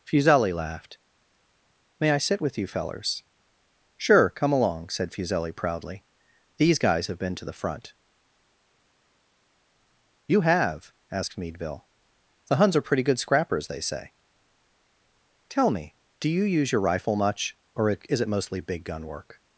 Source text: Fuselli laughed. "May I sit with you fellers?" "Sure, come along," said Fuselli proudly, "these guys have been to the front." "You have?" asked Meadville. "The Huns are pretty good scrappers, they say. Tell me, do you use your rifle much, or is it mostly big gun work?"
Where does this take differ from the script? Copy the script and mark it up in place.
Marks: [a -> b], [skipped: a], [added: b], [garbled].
Fuselli laughed. "May I sit with you fellers?" "Sure, come along," said Fuselli proudly, "these guys have been to the front." "You have?" asked Meadville. "The Huns are pretty good scrappers, they say. Tell me, do you use your rifle much, or is it mostly big gun work?"